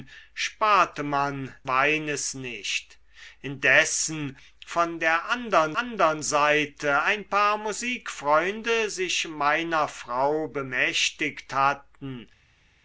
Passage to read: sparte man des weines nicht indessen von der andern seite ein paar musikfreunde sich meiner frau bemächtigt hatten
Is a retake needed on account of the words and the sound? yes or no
yes